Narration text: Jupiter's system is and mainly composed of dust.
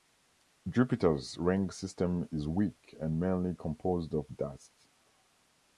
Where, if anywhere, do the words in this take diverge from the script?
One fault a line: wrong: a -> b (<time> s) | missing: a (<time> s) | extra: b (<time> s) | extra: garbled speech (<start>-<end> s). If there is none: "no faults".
extra: ring (1.4 s)
extra: weak (2.5 s)